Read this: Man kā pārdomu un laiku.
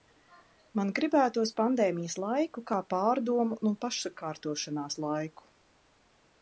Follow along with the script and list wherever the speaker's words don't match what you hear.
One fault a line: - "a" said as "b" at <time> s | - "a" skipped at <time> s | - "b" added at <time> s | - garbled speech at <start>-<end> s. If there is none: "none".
- "gribētos pandēmijas laiku" added at 1.0 s
- "pašsakārtošanās" added at 3.9 s